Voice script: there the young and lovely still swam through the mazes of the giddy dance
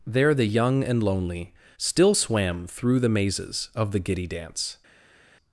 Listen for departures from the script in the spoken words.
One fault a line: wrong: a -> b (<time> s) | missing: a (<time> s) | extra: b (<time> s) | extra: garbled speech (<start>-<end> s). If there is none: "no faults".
wrong: lovely -> lonely (1.0 s)